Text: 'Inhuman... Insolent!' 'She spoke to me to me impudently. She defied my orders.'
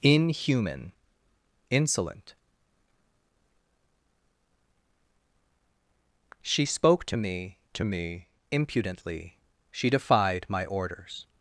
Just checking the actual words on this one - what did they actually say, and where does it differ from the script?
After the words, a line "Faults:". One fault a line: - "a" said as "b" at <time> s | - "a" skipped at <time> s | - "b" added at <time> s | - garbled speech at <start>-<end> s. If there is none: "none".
'Inhuman... Insolent!' 'She spoke to me to me impudently. She defied my orders.'
Faults:
none